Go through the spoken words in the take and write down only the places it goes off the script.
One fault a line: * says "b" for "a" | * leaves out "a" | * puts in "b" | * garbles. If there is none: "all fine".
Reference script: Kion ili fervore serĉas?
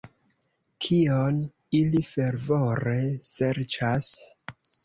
all fine